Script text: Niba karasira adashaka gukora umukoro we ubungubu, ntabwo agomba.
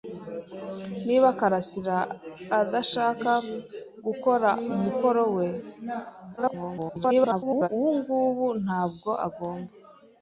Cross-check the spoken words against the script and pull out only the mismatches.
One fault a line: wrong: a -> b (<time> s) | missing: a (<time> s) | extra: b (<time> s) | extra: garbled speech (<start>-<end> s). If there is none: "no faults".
extra: garbled speech (6.4-7.7 s)